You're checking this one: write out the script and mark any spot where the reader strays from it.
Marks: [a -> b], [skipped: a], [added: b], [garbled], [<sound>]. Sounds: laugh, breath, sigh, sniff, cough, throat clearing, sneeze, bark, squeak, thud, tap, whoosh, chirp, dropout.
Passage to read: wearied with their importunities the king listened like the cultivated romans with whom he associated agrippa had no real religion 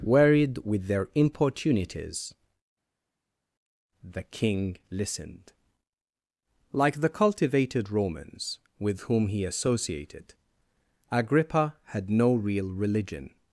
wearied with their importunities the king listened like the cultivated romans with whom he associated agrippa had no real religion